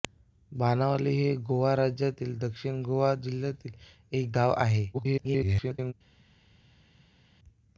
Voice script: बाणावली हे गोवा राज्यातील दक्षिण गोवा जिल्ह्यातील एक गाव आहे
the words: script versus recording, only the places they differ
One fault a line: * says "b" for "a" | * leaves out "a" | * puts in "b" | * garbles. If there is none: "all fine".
* garbles